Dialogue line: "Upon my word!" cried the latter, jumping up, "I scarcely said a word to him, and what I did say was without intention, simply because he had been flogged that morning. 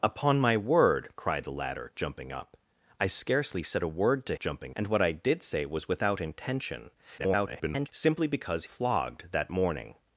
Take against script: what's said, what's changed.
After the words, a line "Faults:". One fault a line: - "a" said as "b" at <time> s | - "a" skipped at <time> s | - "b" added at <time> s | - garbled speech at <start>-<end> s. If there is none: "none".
"Upon my word!" cried the latter, jumping up, "I scarcely said a word to jumping, and what I did say was without intention, [garbled] simply because flogged that morning.
Faults:
- "him" said as "jumping" at 4.4 s
- garbled speech at 7.2-7.9 s
- "he had been" skipped at 8.6 s